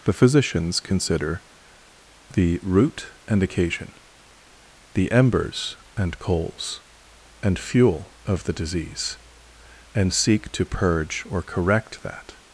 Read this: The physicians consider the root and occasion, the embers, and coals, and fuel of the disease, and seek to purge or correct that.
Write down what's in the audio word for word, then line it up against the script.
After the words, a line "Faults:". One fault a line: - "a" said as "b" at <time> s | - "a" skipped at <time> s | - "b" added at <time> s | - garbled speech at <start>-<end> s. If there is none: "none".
The physicians consider the root and occasion, the embers, and coals, and fuel of the disease, and seek to purge or correct that.
Faults:
none